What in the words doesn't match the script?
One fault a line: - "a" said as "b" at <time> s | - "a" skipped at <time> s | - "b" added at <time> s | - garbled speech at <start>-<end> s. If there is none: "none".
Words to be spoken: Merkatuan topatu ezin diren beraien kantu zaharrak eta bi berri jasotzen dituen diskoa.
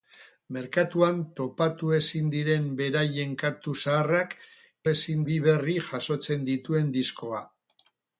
- "eta" said as "ezin" at 4.9 s